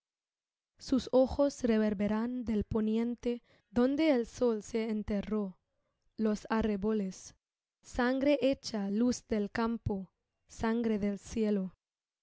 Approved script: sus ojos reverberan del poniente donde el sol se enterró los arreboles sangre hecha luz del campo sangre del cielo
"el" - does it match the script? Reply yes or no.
yes